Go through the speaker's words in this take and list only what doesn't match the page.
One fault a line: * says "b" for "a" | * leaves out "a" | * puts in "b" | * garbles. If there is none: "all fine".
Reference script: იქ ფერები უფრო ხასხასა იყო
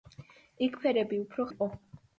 * leaves out "ხასხასა"